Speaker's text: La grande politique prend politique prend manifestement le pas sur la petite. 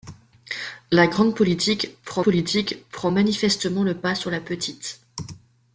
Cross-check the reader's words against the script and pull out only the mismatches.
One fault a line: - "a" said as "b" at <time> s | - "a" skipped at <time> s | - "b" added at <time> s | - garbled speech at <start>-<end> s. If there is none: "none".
none